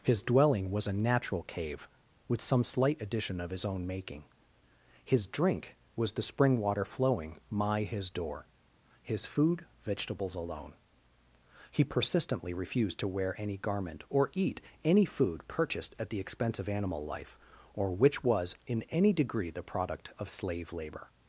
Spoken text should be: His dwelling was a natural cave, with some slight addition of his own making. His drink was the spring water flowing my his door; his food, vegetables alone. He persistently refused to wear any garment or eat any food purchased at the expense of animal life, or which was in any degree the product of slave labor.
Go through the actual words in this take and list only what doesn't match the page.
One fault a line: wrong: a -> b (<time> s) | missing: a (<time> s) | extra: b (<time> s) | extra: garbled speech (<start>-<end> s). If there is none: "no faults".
no faults